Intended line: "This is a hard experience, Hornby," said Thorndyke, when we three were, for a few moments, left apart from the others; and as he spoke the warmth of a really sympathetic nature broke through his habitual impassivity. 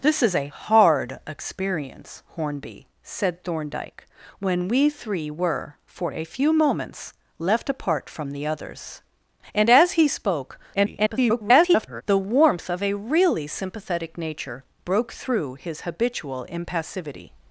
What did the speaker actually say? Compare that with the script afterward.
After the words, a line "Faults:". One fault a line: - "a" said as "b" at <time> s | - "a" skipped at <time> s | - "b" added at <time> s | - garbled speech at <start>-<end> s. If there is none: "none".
"This is a hard experience, Hornby," said Thorndyke, when we three were, for a few moments, left apart from the others; and as he spoke [garbled] the warmth of a really sympathetic nature broke through his habitual impassivity.
Faults:
- garbled speech at 10.7-12.0 s